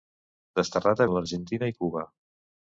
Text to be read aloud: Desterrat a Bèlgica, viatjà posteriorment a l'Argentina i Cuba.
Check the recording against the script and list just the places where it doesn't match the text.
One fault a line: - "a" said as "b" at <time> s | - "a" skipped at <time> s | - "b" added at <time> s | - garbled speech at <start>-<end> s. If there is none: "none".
- "Bèlgica viatjà posteriorment" skipped at 1.1 s